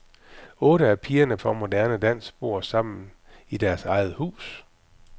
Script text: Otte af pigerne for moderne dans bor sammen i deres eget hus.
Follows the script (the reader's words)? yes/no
yes